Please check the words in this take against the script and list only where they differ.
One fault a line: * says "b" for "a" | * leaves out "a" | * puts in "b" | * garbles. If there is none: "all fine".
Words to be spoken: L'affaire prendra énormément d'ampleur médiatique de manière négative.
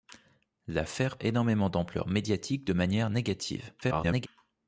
* leaves out "prendra"
* garbles